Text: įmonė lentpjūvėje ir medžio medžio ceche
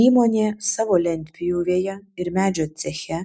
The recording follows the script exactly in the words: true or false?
false